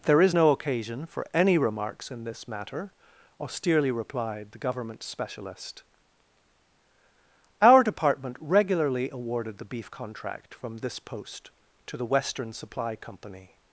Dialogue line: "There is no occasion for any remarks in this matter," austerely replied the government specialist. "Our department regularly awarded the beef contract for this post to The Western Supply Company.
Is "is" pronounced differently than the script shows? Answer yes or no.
no